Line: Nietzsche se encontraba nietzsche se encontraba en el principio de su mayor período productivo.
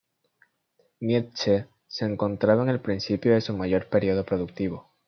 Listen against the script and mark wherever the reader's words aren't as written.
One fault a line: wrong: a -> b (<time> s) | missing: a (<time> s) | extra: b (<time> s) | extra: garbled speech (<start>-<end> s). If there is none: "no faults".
missing: nietzsche se encontraba (2.6 s)